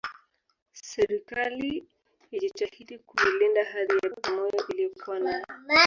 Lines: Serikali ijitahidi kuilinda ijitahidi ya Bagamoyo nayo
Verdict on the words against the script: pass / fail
fail